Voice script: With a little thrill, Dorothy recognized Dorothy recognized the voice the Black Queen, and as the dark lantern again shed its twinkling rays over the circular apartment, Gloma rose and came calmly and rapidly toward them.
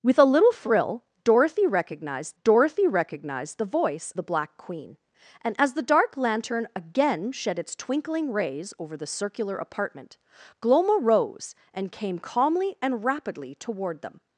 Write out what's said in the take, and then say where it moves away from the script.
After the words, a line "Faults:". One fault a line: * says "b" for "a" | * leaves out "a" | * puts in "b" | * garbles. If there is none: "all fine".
With a little thrill, Dorothy recognized Dorothy recognized the voice the Black Queen, and as the dark lantern again shed its twinkling rays over the circular apartment, Gloma rose and came calmly and rapidly toward them.
Faults:
all fine